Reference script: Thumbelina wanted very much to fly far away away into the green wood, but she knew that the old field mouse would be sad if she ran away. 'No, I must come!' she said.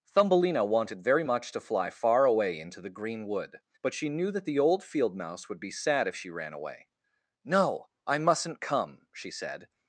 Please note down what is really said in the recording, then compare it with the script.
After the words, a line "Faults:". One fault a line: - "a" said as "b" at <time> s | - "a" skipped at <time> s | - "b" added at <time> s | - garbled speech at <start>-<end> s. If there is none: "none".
Thumbelina wanted very much to fly far away into the green wood, but she knew that the old field mouse would be sad if she ran away. 'No, I mustn't come!' she said.
Faults:
- "away" skipped at 2.6 s
- "must" said as "mustn't" at 8.2 s